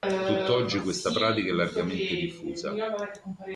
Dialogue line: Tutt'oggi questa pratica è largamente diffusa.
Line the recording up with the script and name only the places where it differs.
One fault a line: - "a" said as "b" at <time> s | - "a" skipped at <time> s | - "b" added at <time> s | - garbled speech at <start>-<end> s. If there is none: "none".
none